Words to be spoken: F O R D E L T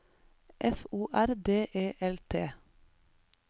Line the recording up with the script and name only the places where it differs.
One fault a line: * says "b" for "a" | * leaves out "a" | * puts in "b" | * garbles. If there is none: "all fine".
all fine